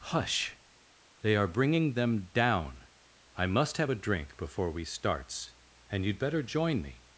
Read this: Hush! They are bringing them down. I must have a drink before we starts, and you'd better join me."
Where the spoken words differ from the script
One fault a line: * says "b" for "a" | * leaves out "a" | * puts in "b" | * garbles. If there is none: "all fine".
all fine